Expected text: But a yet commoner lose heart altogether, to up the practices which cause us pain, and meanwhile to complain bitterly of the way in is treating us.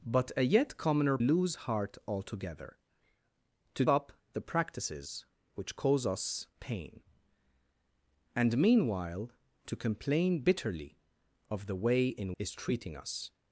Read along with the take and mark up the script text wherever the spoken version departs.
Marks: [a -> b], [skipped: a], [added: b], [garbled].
But a yet commoner lose heart altogether, to up the practices which cause us pain, and meanwhile to complain bitterly of the way in is treating us.